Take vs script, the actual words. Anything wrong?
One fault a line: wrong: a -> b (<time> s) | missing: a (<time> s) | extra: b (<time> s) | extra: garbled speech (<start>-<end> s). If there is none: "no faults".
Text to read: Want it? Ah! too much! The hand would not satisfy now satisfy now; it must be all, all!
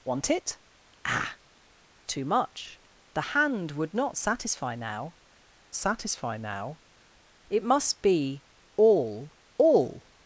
no faults